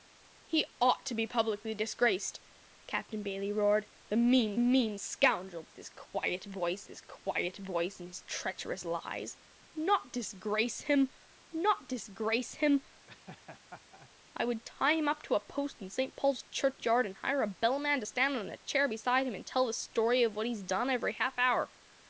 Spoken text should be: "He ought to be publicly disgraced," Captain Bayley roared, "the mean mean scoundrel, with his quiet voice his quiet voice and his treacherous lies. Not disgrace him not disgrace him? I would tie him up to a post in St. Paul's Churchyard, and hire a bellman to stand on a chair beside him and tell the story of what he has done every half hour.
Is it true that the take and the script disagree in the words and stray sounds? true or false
true